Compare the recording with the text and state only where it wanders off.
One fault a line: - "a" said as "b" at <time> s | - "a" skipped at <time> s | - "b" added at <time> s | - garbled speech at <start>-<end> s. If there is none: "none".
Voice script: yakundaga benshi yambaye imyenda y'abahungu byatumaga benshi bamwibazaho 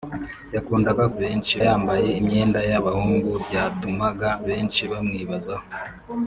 none